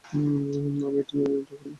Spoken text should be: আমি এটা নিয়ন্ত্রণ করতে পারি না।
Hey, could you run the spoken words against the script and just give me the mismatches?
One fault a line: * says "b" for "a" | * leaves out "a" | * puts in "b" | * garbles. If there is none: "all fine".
* leaves out "পারি"